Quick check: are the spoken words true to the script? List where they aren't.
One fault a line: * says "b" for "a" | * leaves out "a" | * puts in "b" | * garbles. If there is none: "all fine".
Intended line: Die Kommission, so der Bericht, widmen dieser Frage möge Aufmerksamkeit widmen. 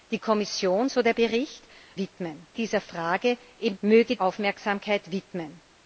all fine